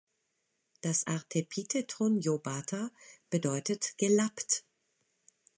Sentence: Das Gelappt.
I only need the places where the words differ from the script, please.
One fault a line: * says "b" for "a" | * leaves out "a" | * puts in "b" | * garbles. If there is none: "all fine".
* puts in "Artepitheton lobata bedeutet"